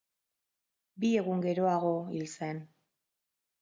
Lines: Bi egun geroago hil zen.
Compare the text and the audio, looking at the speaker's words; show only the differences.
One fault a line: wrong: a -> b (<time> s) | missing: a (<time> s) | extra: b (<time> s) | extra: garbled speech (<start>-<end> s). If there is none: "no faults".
no faults